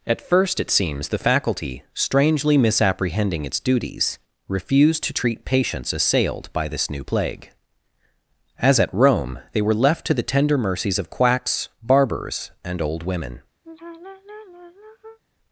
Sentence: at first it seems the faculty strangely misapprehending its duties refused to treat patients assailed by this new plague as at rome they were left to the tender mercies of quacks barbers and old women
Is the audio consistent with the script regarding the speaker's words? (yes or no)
yes